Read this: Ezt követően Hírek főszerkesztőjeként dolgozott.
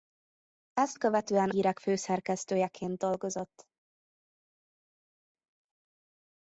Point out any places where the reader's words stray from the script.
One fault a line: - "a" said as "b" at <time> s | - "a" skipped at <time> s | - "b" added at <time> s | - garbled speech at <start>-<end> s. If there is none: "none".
none